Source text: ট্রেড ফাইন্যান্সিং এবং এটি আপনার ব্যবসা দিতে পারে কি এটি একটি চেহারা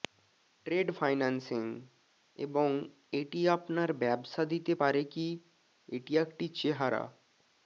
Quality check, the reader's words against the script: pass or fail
pass